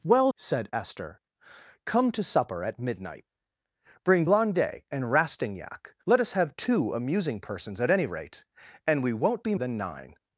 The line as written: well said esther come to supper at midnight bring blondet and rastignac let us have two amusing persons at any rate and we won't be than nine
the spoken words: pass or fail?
pass